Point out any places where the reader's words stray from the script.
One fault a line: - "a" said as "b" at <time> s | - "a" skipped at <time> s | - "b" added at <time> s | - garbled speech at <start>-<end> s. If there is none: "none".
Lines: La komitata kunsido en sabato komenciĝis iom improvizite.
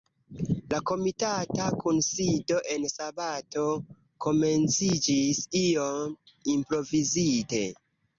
none